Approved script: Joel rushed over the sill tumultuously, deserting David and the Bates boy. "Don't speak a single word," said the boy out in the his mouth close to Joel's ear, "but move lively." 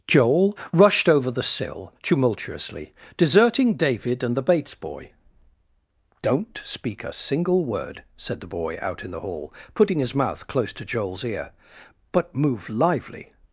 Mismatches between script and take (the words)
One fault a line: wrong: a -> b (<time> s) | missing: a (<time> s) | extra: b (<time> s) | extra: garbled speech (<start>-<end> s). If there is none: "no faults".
extra: hall putting (9.2 s)